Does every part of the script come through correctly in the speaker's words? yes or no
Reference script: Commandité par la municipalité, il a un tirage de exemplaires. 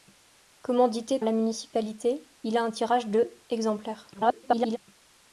no